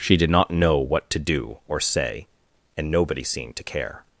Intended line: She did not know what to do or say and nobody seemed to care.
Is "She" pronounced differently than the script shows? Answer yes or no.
no